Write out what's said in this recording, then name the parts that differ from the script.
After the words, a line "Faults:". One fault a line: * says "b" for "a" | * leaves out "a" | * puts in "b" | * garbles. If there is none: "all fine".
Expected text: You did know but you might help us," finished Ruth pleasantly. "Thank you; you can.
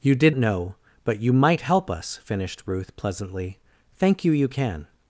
You did know but you might help us," finished Ruth pleasantly. "Thank you; you can.
Faults:
all fine